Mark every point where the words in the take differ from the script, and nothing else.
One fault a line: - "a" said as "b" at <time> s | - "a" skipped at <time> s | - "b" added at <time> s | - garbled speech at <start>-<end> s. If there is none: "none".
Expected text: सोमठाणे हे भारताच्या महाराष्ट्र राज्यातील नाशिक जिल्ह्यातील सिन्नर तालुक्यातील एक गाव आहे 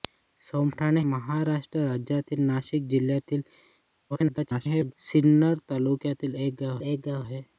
- "हे भारताच्या" skipped at 1.0 s
- garbled speech at 4.1-4.9 s
- "एक गाव" added at 6.8 s